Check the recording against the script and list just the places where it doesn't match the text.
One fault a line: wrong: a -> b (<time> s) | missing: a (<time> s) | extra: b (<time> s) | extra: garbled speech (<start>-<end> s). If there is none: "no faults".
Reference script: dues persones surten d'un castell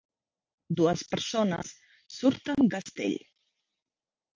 missing: d'un (2.7 s)